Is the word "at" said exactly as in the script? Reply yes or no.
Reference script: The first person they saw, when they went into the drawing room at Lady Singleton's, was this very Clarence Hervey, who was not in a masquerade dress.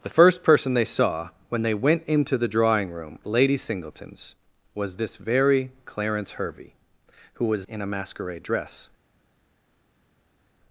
no